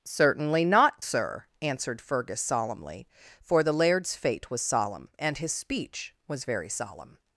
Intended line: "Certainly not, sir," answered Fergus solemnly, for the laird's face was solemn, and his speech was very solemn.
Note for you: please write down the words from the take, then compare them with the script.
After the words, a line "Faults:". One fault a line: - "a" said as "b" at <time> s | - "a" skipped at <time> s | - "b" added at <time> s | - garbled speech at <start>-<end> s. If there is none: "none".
"Certainly not, sir," answered Fergus solemnly, for the laird's fate was solemn, and his speech was very solemn.
Faults:
- "face" said as "fate" at 4.2 s